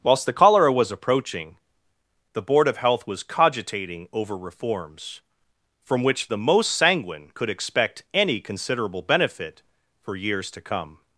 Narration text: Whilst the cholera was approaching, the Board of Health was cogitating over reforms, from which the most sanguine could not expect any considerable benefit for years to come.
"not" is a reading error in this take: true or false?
true